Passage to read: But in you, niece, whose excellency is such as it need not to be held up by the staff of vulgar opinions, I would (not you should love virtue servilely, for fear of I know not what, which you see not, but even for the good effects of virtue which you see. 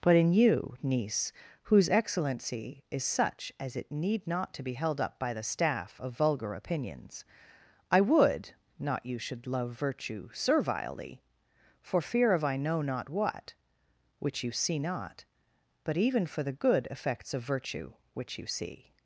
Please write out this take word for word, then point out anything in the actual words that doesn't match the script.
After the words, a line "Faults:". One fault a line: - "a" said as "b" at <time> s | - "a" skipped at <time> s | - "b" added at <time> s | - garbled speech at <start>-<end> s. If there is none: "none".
But in you, niece, whose excellency is such as it need not to be held up by the staff of vulgar opinions, I would (not you should love virtue servilely, for fear of I know not what, which you see not, but even for the good effects of virtue which you see.
Faults:
none